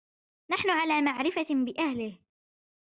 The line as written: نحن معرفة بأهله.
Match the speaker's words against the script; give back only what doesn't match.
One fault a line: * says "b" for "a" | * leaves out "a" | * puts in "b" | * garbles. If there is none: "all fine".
* puts in "على"